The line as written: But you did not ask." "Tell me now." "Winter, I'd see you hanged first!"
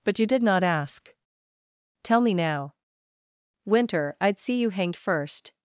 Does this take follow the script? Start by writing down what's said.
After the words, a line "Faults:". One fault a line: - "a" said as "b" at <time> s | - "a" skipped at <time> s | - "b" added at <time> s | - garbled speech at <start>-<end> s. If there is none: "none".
But you did not ask." "Tell me now." "Winter, I'd see you hanged first!"
Faults:
none